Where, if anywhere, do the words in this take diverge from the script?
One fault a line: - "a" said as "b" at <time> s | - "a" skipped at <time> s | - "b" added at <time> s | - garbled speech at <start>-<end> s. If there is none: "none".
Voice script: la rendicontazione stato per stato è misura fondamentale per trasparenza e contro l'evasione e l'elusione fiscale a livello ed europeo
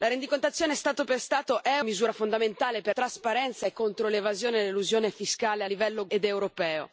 none